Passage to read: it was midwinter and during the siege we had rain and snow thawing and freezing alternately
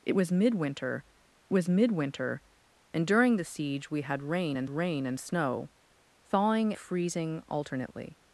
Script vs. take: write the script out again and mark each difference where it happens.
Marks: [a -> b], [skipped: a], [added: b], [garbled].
it was midwinter [added: was midwinter] and during the siege we had rain and [added: rain and] snow thawing [skipped: and] freezing alternately